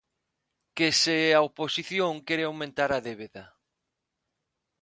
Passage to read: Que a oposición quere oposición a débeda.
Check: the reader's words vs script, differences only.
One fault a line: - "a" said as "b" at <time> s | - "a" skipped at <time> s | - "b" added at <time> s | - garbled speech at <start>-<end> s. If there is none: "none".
- "se" added at 1.0 s
- "oposición" said as "aumentar" at 2.5 s